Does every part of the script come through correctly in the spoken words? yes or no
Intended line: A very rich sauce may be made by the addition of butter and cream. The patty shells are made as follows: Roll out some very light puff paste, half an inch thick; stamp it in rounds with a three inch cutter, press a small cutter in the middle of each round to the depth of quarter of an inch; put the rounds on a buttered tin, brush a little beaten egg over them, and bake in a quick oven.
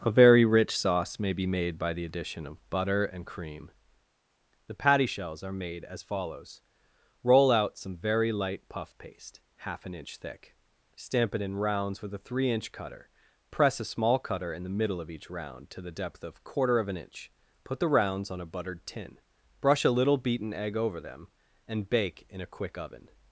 yes